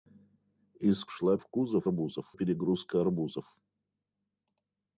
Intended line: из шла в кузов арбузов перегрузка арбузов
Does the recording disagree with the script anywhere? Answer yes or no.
no